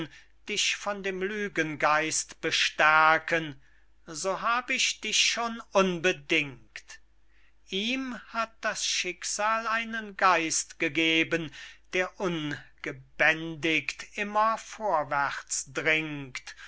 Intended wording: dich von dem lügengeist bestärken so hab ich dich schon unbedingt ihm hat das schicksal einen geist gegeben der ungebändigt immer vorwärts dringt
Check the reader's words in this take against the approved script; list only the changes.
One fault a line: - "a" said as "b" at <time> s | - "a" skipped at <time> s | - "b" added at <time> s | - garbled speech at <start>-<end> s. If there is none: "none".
none